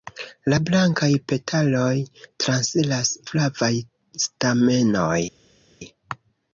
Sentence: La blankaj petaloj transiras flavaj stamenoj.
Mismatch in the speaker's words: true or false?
false